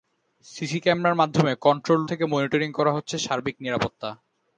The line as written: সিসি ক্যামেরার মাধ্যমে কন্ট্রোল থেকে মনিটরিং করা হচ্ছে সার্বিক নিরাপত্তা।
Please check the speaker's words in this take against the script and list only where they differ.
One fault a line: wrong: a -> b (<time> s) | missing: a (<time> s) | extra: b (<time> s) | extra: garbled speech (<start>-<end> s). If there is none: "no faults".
no faults